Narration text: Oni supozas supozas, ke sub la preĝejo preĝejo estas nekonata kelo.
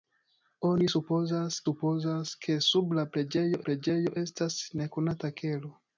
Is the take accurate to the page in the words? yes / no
yes